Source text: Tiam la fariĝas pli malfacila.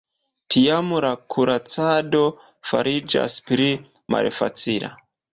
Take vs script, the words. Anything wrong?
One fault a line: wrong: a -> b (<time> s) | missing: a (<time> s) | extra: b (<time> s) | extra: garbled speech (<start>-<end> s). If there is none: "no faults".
extra: kuracado (1.3 s)